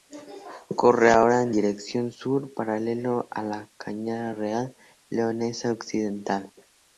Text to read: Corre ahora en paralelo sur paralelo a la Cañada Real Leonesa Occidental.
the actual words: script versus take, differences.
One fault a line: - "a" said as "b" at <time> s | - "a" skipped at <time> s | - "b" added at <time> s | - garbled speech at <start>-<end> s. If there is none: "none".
- "paralelo" said as "dirección" at 1.5 s